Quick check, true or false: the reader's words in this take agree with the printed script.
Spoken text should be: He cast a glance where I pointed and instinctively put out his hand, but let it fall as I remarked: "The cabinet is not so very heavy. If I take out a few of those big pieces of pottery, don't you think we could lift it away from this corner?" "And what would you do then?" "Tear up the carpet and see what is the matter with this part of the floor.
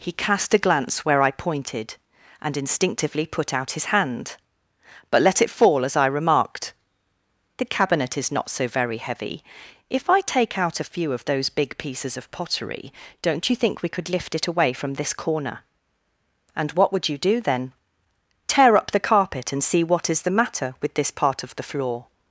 true